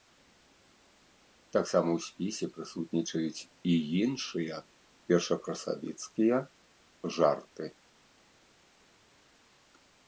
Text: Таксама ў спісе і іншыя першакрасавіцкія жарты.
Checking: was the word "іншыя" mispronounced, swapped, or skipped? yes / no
no